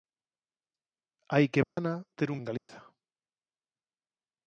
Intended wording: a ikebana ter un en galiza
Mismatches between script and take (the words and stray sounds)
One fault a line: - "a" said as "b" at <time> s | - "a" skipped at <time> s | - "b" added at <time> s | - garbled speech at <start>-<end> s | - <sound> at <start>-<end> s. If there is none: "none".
- dropout at 1.6-1.8 s
- dropout at 2.6-2.7 s